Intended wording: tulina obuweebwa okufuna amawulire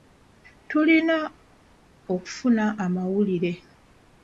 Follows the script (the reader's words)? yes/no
no